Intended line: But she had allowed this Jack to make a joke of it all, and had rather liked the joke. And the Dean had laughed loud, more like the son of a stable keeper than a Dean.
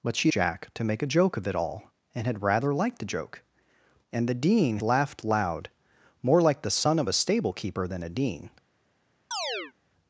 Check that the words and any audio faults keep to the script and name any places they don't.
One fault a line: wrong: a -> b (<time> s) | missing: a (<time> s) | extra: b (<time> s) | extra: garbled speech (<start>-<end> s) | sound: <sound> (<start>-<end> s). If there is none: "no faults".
missing: had allowed this (0.3 s)
missing: had (4.8 s)
sound: chirp (9.3-9.7 s)